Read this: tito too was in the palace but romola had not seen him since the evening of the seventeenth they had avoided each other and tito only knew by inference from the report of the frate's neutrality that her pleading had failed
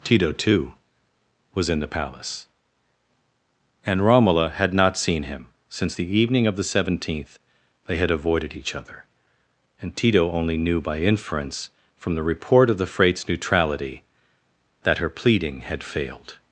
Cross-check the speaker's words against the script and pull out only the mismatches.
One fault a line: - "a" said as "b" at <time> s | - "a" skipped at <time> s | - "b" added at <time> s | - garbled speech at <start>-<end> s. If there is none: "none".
- "but" said as "and" at 3.9 s